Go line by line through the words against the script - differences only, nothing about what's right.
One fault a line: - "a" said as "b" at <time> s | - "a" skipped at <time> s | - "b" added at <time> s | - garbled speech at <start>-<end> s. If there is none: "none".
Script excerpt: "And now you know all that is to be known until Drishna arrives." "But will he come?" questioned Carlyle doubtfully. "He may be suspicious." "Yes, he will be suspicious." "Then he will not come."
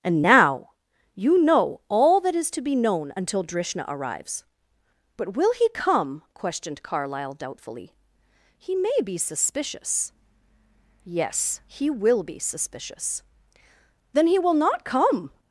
none